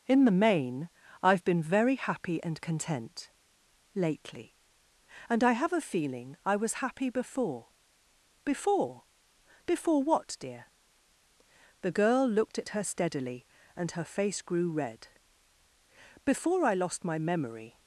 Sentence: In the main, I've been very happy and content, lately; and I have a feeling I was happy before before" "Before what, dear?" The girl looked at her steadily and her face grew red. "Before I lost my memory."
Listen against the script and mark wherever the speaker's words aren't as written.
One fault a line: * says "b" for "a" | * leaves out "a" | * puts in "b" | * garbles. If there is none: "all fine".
all fine